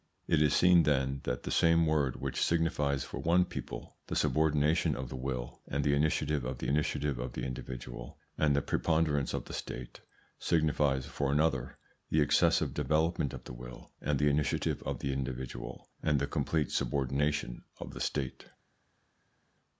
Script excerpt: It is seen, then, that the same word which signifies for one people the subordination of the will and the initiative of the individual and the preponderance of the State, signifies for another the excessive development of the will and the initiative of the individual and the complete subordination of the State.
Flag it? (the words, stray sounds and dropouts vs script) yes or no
yes